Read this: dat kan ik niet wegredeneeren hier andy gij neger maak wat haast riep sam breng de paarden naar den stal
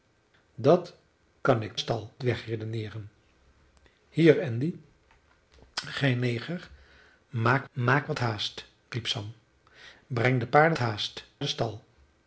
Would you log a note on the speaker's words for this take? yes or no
yes